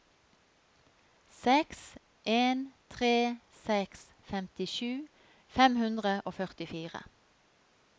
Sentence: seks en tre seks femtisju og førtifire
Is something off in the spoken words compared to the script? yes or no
yes